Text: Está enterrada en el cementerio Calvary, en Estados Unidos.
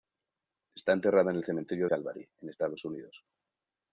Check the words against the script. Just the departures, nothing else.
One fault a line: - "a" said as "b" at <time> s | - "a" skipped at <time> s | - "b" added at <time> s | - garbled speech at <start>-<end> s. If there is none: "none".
none